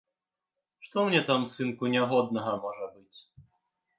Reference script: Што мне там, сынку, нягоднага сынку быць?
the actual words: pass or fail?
fail